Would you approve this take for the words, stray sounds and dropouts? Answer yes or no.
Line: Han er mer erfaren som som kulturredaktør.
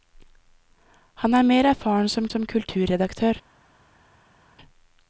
yes